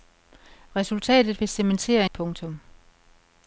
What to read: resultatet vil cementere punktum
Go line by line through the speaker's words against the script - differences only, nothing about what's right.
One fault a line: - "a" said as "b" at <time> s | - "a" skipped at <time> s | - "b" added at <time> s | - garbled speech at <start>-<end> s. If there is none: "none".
none